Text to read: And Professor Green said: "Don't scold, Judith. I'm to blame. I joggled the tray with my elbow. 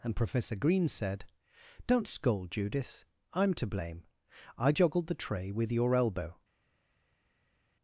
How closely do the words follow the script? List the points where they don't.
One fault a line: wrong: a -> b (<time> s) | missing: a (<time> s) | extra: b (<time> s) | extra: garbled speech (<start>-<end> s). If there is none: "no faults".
wrong: my -> your (5.7 s)